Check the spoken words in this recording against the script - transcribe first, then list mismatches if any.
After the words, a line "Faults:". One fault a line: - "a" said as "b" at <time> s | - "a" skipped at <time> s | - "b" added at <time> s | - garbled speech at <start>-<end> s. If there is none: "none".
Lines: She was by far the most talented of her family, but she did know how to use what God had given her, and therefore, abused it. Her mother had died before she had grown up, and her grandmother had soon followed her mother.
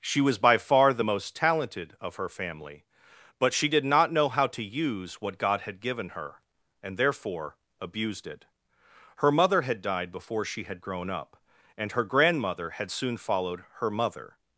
She was by far the most talented of her family, but she did not know how to use what God had given her, and therefore, abused it. Her mother had died before she had grown up, and her grandmother had soon followed her mother.
Faults:
- "not" added at 3.8 s